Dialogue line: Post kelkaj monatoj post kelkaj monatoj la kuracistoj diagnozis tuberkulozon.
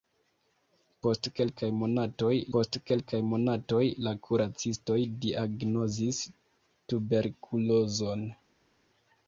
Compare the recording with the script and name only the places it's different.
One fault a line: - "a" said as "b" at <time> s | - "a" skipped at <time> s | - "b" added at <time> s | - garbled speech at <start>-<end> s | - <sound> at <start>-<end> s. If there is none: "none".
none